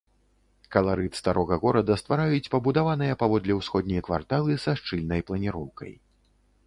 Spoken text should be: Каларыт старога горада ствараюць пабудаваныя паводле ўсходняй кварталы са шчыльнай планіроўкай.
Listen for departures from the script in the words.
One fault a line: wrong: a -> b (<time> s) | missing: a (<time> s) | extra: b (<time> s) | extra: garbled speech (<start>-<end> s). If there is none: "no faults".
no faults